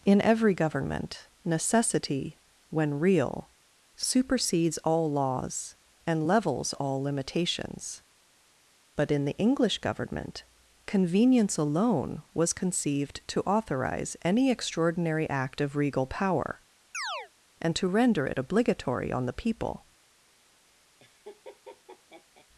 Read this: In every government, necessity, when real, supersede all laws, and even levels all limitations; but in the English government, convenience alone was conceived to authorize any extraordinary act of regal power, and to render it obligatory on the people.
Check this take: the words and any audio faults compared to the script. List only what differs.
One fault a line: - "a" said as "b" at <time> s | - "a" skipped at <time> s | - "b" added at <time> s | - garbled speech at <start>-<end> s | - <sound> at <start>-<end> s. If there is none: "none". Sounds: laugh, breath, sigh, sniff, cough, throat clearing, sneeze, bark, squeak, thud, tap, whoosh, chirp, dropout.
- "supersede" said as "supersedes" at 4.0 s
- "even" skipped at 6.3 s
- chirp at 16.9-17.3 s
- laugh at 21.0-22.5 s